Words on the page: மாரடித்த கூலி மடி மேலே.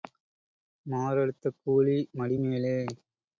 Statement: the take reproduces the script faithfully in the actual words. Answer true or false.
true